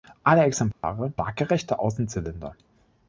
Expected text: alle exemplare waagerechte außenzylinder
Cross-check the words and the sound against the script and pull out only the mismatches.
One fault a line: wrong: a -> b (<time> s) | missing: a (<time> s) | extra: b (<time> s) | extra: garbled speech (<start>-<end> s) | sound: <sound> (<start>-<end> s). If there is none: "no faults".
sound: dropout (0.7-0.8 s)